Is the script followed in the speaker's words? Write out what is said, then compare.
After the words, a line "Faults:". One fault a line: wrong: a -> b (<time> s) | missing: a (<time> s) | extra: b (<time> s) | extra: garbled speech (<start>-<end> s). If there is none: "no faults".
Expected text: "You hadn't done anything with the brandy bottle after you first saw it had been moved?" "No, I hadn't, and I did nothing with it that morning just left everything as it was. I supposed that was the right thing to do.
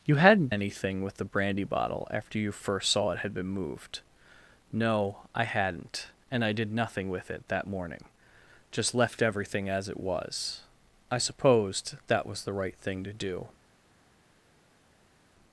"You hadn't anything with the brandy bottle after you first saw it had been moved?" "No, I hadn't, and I did nothing with it that morning just left everything as it was. I supposed that was the right thing to do.
Faults:
missing: done (0.5 s)